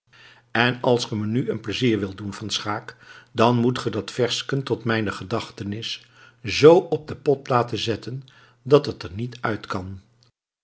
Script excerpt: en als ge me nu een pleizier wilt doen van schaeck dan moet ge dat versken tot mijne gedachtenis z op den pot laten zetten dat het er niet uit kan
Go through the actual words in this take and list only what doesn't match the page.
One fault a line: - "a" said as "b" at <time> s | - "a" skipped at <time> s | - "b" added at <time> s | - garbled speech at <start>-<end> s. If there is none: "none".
none